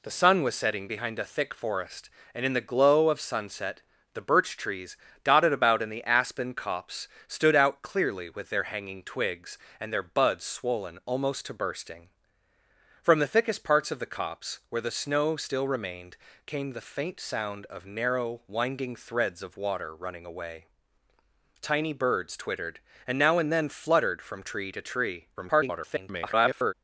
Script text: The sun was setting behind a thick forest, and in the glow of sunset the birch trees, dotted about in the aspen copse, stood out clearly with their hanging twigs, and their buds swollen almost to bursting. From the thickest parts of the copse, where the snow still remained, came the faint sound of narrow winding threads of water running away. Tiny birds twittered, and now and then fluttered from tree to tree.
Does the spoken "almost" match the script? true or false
true